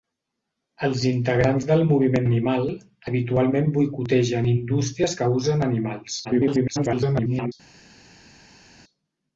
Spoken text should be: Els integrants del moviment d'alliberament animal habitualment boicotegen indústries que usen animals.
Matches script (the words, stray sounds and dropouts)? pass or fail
fail